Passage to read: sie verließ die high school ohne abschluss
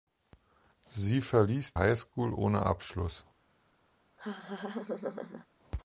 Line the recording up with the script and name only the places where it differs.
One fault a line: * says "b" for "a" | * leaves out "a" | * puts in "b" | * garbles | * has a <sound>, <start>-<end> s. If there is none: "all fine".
* leaves out "die"
* has a laugh, 4.2-5.5 s